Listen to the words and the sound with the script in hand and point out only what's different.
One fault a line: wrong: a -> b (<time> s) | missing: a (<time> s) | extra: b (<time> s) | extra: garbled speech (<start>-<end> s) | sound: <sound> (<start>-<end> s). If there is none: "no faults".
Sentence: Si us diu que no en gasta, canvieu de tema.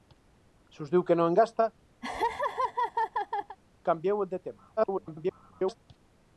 sound: laugh (2.0-3.6 s)
extra: garbled speech (4.8-5.8 s)